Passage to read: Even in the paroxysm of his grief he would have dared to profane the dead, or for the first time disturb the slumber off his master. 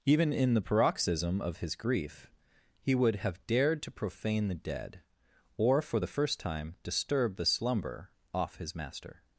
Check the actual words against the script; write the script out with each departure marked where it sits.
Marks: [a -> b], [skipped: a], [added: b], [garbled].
Even in the paroxysm of his grief he would have dared to profane the dead, or for the first time disturb the slumber off his master.